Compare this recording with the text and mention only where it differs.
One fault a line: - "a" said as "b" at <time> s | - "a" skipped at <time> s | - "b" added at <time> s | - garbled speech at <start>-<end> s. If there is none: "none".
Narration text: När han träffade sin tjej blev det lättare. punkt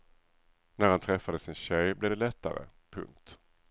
none